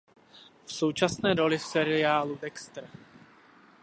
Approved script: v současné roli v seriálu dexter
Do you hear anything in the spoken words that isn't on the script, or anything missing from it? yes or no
no